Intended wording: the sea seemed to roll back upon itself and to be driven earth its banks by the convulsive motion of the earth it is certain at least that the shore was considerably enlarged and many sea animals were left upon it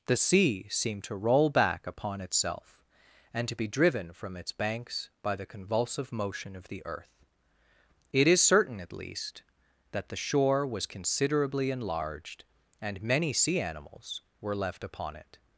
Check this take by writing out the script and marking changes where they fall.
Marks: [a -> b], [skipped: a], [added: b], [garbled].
the sea seemed to roll back upon itself and to be driven [earth -> from] its banks by the convulsive motion of the earth it is certain at least that the shore was considerably enlarged and many sea animals were left upon it